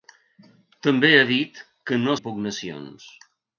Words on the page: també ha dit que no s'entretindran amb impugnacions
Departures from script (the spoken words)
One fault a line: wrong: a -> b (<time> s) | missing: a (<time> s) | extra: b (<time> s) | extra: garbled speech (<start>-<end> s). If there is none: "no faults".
missing: s'entretindran amb (2.2 s)